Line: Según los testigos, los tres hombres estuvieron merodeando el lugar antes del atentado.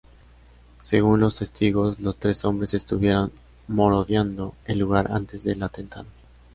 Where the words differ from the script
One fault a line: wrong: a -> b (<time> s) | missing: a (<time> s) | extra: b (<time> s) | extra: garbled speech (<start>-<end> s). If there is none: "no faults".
no faults